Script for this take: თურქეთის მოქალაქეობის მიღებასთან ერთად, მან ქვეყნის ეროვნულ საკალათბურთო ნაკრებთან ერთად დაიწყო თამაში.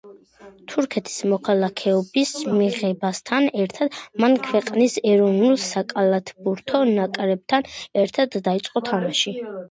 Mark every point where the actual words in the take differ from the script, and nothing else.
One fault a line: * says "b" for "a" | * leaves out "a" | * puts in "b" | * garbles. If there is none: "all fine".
all fine